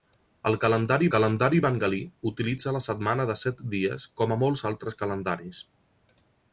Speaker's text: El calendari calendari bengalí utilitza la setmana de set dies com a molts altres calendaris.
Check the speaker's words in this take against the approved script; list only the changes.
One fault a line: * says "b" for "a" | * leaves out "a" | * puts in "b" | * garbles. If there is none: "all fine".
all fine